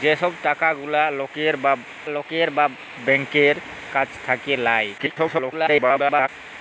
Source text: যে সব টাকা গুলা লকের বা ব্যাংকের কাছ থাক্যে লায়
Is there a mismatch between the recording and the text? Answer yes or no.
yes